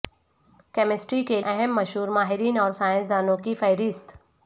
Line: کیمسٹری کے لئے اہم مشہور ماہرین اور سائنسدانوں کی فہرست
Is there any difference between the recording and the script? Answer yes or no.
yes